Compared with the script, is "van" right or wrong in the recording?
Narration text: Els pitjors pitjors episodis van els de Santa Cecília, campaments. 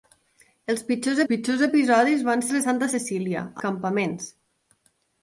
right